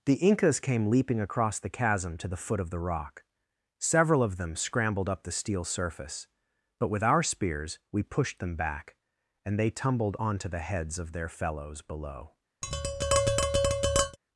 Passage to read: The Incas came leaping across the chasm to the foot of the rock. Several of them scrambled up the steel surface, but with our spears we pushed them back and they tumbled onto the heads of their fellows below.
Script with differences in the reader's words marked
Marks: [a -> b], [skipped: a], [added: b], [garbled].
The Incas came leaping across the chasm to the foot of the rock. Several of them scrambled up the steel surface, but with our spears we pushed them back and they tumbled onto the heads of their fellows below.